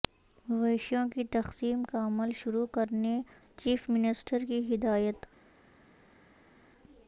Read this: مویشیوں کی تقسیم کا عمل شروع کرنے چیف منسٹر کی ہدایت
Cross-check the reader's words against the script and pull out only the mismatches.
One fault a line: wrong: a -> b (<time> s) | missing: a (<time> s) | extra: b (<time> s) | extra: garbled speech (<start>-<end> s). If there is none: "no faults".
no faults